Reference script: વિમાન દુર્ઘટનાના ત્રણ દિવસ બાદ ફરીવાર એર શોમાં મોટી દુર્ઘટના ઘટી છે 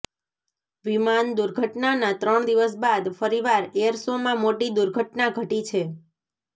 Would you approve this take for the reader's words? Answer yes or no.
yes